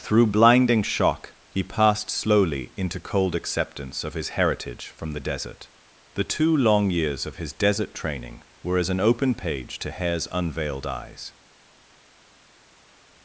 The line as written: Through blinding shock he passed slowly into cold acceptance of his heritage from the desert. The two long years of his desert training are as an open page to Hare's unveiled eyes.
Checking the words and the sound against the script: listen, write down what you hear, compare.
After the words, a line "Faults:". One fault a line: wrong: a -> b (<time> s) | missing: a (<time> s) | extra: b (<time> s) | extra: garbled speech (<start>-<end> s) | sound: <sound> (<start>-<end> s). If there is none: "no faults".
Through blinding shock he passed slowly into cold acceptance of his heritage from the desert. The two long years of his desert training were as an open page to Hare's unveiled eyes.
Faults:
wrong: are -> were (8.6 s)